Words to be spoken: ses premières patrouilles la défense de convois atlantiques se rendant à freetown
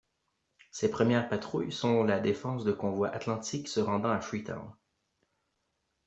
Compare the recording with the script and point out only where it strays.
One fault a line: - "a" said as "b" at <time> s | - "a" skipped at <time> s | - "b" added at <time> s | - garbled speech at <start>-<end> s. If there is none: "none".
- "sont" added at 1.7 s